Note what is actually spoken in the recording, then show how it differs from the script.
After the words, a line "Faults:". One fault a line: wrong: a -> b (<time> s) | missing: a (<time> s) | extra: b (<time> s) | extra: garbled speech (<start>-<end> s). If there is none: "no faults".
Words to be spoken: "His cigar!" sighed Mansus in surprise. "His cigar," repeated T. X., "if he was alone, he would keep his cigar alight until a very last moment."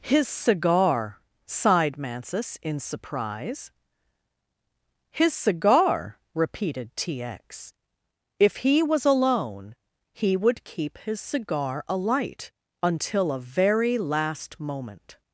"His cigar!" sighed Mansus in surprise. "His cigar," repeated T. X., "if he was alone, he would keep his cigar alight until a very last moment."
Faults:
no faults